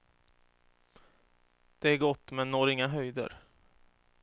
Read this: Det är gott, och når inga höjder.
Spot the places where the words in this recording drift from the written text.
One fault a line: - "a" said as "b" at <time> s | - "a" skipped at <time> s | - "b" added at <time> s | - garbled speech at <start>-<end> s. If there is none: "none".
- "och" said as "men" at 2.3 s